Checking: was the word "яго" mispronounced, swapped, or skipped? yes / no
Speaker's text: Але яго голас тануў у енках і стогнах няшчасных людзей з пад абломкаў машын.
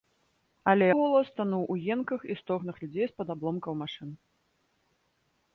yes